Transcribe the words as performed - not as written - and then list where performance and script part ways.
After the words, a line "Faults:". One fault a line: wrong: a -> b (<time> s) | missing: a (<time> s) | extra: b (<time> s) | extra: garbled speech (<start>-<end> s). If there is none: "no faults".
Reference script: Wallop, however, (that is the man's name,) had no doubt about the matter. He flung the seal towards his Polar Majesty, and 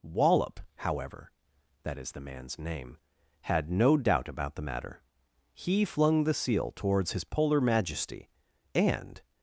Wallop, however, (that is the man's name,) had no doubt about the matter. He flung the seal towards his Polar Majesty, and
Faults:
no faults